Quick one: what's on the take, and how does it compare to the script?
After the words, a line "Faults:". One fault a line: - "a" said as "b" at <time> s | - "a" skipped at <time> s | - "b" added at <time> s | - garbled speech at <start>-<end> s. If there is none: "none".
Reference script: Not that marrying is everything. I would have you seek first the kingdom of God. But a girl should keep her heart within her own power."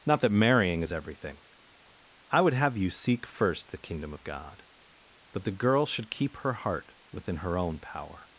Not that marrying is everything. I would have you seek first the kingdom of God. But the girl should keep her heart within her own power."
Faults:
- "a" said as "the" at 5.4 s